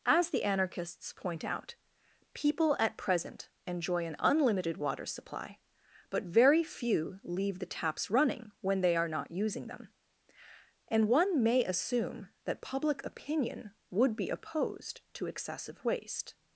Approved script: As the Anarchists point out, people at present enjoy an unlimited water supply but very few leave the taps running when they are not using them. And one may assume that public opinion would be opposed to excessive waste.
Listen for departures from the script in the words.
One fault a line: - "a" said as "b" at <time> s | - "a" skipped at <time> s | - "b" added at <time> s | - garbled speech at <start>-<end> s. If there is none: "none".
none